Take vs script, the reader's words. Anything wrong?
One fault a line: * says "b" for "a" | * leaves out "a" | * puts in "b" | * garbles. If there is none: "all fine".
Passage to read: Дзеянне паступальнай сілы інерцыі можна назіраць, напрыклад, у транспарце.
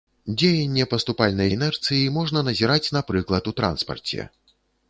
* leaves out "сілы"